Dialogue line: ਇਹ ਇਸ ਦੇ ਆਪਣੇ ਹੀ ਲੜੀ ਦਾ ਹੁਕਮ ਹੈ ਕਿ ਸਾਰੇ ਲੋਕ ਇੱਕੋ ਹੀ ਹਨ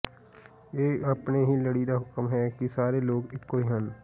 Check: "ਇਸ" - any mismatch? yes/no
yes